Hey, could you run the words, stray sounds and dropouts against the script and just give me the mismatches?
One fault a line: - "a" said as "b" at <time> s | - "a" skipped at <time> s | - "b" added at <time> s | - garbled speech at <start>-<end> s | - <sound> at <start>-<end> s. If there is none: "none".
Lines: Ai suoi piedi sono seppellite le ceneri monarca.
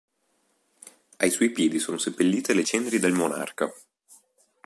- "del" added at 3.0 s